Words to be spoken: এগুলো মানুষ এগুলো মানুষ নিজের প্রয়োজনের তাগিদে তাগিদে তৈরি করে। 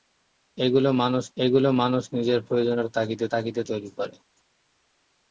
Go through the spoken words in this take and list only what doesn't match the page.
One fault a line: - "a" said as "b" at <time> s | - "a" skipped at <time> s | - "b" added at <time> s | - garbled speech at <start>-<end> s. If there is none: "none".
none